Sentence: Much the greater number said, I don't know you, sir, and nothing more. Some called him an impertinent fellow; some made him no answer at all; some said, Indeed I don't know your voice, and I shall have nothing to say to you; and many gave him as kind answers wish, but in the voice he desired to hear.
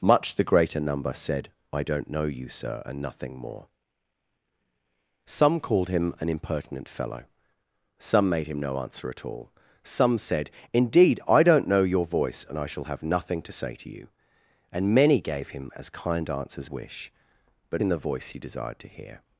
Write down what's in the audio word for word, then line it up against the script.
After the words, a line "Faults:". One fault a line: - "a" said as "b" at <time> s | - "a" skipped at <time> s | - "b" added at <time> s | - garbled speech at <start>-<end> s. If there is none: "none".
Much the greater number said, I don't know you, sir, and nothing more. Some called him an impertinent fellow; some made him no answer at all; some said, Indeed I don't know your voice, and I shall have nothing to say to you; and many gave him as kind answers wish, but in the voice he desired to hear.
Faults:
none